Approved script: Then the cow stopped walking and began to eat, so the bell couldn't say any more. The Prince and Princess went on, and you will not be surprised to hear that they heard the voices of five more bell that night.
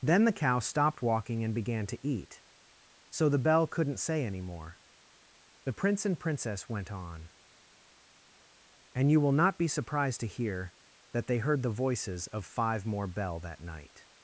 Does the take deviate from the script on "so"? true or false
false